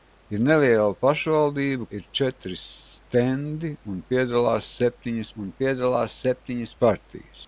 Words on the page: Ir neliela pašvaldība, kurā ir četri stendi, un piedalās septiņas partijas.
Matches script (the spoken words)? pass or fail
fail